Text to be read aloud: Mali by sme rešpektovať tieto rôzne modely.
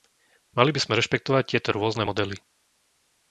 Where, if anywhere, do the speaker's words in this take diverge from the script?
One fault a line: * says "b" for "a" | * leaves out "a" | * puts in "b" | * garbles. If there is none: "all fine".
all fine